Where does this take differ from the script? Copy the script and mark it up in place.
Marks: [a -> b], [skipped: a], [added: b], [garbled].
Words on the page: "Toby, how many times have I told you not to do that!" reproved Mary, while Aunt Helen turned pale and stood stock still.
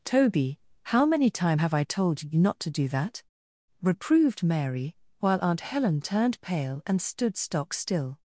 "Toby, how many [times -> time] have I told you not to do that!" reproved Mary, while Aunt Helen turned pale and stood stock still.